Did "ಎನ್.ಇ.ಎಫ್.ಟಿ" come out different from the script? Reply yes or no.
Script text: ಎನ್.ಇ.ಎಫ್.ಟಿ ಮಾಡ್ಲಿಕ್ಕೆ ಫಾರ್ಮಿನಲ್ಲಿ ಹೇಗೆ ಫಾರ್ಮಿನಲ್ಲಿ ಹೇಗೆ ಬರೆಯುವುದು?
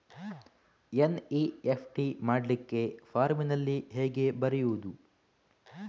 no